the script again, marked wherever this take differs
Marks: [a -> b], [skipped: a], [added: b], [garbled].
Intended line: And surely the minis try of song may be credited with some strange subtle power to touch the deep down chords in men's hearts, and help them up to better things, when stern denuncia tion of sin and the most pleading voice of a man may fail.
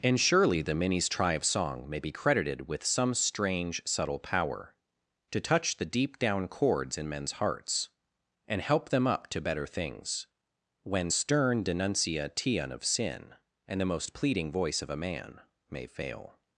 And surely the minis try of song may be credited with some strange subtle power to touch the deep down chords in men's hearts, and help them up to better things, when stern denuncia tion of sin and the most pleading voice of a man may fail.